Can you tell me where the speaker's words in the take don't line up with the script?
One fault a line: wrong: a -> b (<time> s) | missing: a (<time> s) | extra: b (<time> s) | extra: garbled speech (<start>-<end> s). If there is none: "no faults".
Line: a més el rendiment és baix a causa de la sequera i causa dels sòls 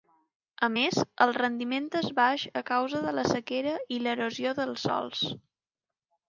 wrong: causa -> l'erosió (4.0 s)